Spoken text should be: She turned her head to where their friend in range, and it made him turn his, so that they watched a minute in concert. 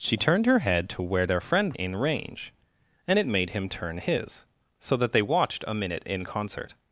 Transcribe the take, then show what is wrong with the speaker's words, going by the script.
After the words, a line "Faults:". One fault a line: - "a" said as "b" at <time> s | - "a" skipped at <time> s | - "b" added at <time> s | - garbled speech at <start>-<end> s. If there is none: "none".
She turned her head to where their friend in range, and it made him turn his, so that they watched a minute in concert.
Faults:
none